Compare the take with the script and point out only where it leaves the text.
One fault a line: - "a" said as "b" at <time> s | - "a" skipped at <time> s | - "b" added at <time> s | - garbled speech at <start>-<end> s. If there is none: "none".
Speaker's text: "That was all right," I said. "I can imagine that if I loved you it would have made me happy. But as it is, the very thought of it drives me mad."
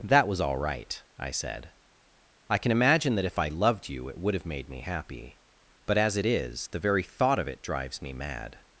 none